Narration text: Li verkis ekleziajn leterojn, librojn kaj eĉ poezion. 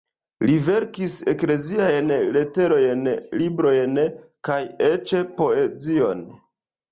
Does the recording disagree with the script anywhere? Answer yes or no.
no